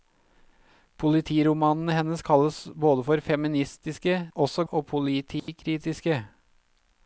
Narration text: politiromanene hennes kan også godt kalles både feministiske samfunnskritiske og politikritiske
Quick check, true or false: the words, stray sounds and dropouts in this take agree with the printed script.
false